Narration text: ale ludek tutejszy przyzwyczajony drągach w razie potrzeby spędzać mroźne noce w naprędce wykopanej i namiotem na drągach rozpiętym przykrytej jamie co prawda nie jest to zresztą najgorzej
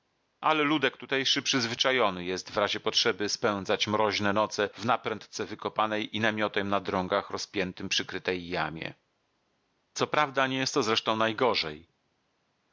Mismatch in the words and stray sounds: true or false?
true